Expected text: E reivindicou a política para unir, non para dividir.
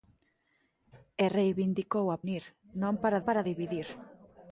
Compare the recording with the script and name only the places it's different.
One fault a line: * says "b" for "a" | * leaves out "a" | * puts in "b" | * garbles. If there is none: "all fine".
* leaves out "política para"
* puts in "para"